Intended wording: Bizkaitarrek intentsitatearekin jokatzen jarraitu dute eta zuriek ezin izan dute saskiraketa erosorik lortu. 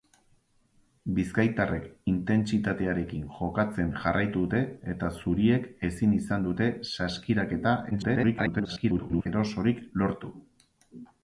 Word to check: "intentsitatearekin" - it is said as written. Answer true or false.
true